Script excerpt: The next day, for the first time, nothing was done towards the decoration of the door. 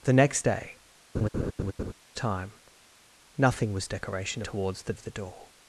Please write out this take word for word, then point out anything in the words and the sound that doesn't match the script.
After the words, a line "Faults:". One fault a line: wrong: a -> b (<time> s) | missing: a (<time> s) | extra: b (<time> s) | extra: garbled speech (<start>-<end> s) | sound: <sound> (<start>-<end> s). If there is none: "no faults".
The next day, time, nothing was decoration towards the of the door.
Faults:
missing: for the first (0.8 s)
sound: laugh (1.1-1.9 s)
wrong: done -> decoration (3.9 s)
missing: decoration (4.9 s)